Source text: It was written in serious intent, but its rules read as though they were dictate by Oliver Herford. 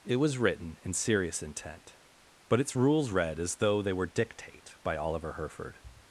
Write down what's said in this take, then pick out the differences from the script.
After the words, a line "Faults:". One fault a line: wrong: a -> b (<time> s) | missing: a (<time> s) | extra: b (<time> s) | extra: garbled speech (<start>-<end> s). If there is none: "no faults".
It was written in serious intent, but its rules read as though they were dictate by Oliver Herford.
Faults:
no faults